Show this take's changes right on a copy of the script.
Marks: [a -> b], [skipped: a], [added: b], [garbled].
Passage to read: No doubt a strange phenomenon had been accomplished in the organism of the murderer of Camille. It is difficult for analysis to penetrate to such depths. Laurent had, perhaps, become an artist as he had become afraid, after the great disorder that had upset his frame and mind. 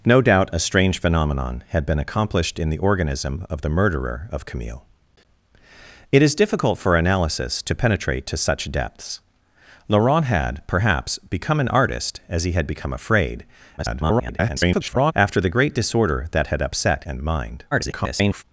No doubt a strange phenomenon had been accomplished in the organism of the murderer of Camille. It is difficult for analysis to penetrate to such depths. Laurent had, perhaps, become an artist as he had become afraid, [garbled] after the great disorder that had upset [skipped: his frame] and mind. [garbled]